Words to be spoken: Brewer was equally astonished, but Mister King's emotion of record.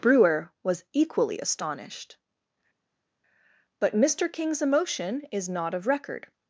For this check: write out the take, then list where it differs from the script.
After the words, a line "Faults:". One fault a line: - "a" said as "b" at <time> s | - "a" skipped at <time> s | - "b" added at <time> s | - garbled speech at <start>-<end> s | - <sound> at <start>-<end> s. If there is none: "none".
Brewer was equally astonished, but Mister King's emotion is not of record.
Faults:
- "is not" added at 5.3 s